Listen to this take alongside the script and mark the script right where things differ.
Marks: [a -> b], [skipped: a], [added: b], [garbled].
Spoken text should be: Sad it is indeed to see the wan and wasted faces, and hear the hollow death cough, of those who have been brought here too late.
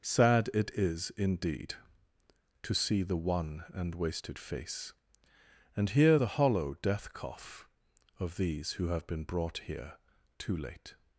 Sad it is indeed to see the wan and wasted [faces, -> face] and hear the hollow death cough, of [those -> these] who have been brought here too late.